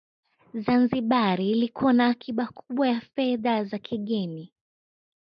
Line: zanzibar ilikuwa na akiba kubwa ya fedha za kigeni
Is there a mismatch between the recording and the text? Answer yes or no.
no